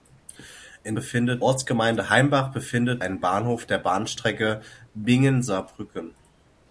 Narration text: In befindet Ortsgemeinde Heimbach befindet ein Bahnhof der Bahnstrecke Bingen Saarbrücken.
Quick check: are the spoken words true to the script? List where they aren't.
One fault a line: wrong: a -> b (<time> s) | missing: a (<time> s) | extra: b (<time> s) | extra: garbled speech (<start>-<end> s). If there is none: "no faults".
no faults